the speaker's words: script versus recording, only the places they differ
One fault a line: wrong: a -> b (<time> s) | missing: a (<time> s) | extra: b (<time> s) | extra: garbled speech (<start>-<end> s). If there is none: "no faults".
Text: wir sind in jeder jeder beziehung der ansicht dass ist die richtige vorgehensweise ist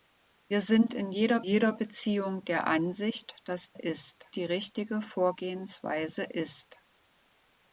no faults